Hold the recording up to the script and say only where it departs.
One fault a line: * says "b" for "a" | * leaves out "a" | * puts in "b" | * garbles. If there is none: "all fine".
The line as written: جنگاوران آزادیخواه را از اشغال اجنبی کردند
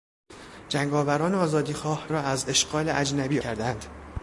all fine